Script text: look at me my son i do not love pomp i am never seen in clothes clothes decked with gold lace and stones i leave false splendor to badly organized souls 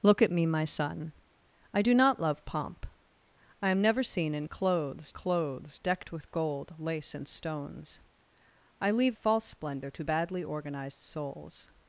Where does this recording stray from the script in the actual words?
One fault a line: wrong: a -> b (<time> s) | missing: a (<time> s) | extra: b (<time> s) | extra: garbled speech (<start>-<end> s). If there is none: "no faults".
no faults